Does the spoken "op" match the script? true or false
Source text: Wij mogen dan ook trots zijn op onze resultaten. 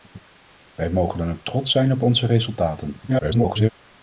true